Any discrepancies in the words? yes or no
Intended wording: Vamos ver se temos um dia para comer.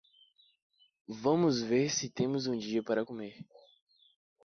no